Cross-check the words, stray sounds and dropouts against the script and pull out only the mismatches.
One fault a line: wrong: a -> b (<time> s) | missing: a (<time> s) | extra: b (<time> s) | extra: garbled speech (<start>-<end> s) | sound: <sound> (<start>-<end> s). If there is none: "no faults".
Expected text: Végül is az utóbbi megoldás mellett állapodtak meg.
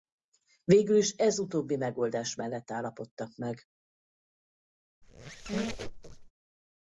wrong: az -> ez (1.1 s)
sound: squeak (5.0-6.3 s)